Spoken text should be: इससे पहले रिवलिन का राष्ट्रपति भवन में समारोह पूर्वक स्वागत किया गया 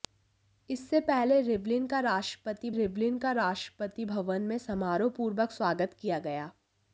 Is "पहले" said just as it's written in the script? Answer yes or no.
yes